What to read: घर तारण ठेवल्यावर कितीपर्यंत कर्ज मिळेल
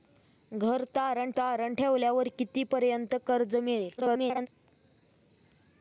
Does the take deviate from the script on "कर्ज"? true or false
false